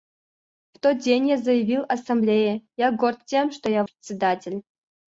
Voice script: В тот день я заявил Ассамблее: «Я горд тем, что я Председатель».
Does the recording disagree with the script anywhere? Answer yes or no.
no